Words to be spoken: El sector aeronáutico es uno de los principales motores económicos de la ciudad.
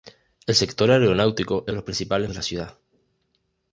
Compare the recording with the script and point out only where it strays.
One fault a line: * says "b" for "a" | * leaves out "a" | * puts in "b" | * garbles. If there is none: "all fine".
* leaves out "uno"
* leaves out "motores económicos"